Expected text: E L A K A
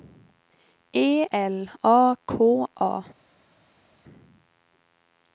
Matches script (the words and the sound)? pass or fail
pass